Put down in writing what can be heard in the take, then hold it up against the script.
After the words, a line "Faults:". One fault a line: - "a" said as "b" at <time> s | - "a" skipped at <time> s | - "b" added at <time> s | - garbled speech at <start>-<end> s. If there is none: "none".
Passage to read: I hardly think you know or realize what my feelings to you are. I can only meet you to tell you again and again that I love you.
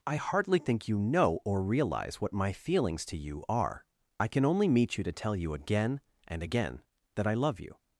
I hardly think you know or realize what my feelings to you are. I can only meet you to tell you again and again that I love you.
Faults:
none